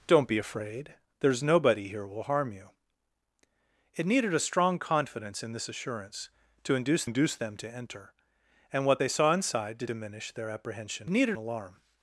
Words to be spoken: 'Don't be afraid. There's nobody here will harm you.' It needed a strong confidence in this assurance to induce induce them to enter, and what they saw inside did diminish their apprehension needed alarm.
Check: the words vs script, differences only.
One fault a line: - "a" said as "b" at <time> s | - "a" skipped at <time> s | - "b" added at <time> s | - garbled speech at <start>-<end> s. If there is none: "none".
none